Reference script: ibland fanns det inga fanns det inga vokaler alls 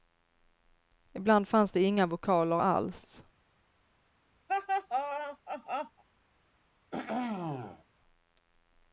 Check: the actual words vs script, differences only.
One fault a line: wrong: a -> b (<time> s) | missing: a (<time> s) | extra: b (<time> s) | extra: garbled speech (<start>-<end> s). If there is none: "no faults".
missing: fanns det inga (2.0 s)